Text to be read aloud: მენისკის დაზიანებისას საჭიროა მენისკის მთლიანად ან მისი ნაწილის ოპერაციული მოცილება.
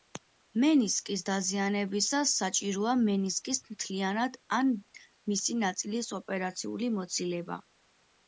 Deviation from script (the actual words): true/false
false